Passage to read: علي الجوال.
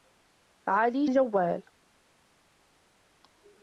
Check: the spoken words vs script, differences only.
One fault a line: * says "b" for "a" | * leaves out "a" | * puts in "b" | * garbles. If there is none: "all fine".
all fine